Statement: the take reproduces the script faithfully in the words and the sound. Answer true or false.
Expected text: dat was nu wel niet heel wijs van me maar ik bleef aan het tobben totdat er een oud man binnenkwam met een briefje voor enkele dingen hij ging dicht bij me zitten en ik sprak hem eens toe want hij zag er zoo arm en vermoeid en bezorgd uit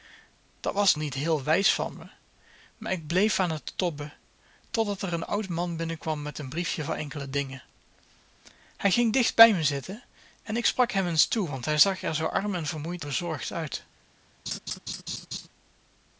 false